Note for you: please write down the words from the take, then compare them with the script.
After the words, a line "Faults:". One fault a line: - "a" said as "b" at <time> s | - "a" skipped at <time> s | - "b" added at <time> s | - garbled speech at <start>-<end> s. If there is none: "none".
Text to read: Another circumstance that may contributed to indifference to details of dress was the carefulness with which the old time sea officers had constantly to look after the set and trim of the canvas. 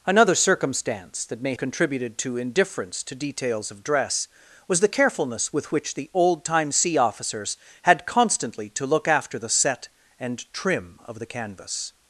Another circumstance that may contributed to indifference to details of dress was the carefulness with which the old time sea officers had constantly to look after the set and trim of the canvas.
Faults:
none